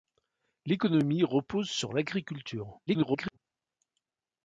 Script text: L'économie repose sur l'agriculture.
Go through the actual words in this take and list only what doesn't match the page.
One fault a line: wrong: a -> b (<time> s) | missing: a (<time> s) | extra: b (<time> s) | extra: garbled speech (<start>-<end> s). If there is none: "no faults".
extra: garbled speech (2.9-3.4 s)